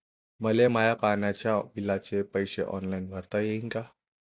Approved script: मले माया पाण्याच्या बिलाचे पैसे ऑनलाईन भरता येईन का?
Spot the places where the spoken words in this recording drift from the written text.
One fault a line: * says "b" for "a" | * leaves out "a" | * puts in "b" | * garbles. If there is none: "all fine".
all fine